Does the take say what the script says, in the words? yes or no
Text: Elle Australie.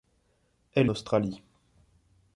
yes